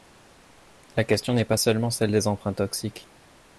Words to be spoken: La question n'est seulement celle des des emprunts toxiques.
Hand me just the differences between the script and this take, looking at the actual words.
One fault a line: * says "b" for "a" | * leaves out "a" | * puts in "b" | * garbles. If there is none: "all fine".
* puts in "pas"
* leaves out "des"